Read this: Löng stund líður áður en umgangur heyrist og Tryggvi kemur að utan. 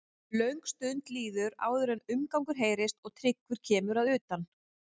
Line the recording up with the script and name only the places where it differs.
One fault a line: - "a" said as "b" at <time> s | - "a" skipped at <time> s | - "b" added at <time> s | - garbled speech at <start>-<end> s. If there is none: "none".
none